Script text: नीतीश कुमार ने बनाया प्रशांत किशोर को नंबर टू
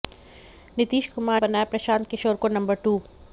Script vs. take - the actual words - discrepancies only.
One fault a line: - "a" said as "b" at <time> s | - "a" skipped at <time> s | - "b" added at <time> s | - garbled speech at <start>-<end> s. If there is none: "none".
- "ने" skipped at 1.4 s